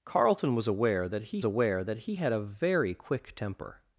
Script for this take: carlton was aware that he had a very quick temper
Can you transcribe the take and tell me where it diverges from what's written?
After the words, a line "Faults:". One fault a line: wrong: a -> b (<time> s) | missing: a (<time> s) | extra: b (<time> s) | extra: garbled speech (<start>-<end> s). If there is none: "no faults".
carlton was aware that he aware that he had a very quick temper
Faults:
extra: aware that he (1.4 s)